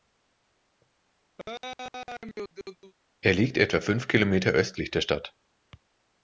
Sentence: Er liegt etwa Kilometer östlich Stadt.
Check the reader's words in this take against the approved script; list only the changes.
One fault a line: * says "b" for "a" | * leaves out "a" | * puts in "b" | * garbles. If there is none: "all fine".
* puts in "fünf"
* puts in "der"